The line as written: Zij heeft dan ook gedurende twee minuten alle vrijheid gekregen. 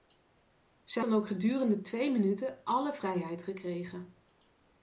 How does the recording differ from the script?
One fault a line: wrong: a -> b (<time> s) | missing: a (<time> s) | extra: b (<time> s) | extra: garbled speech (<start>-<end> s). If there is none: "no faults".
missing: heeft (1.1 s)